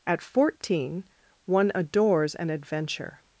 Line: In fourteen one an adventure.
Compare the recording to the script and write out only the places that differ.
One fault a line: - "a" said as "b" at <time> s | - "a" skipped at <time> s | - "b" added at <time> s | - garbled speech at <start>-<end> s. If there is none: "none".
- "In" said as "At" at 0.1 s
- "adores" added at 1.8 s